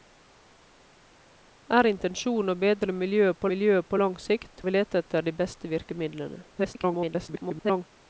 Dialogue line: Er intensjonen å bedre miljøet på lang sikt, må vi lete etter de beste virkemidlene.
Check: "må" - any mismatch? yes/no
yes